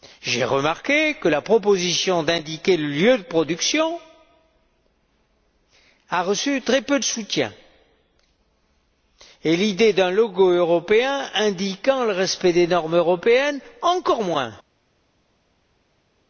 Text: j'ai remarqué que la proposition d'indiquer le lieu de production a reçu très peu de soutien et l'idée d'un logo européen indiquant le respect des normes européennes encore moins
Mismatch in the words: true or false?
false